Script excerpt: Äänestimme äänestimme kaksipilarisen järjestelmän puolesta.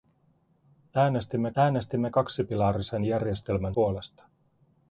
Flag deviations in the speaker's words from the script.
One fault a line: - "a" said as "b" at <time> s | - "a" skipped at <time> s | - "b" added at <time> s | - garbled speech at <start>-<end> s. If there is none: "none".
none